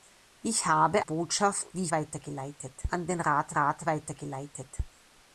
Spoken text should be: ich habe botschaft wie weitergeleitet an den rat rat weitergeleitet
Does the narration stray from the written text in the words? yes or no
no